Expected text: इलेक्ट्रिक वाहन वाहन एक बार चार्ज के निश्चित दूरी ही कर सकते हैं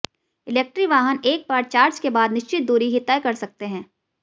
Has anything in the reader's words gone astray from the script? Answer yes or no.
yes